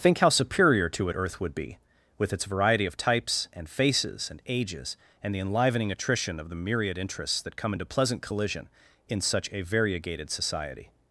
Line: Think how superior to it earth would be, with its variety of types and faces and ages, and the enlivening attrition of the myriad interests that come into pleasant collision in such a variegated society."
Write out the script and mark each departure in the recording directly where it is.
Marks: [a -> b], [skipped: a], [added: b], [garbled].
Think how superior to it earth would be, with its variety of types and faces and ages, and the enlivening attrition of the myriad interests that come into pleasant collision in such a variegated society."